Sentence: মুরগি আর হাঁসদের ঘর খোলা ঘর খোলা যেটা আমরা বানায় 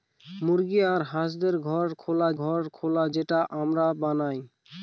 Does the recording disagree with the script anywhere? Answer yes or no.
no